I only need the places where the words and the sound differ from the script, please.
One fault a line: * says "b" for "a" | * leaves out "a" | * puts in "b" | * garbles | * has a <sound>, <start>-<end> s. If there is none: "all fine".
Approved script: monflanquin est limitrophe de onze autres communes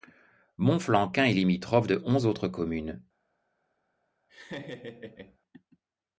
* has a laugh, 4.3-5.4 s